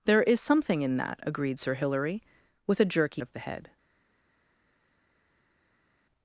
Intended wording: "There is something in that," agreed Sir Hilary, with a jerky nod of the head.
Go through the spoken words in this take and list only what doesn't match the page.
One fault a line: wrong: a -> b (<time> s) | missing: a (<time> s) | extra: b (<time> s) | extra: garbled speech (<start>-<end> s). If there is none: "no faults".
missing: nod (3.2 s)